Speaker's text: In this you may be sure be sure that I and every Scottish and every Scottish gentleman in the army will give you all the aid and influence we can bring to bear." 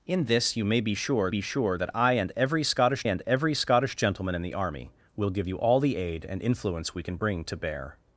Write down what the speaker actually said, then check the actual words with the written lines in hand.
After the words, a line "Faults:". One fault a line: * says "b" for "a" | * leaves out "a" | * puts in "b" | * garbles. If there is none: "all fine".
In this you may be sure be sure that I and every Scottish and every Scottish gentleman in the army will give you all the aid and influence we can bring to bear."
Faults:
all fine